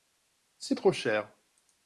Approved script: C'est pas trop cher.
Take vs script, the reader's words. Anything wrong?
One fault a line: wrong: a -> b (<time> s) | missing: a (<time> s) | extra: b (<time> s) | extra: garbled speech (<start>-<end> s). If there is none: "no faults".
missing: pas (0.8 s)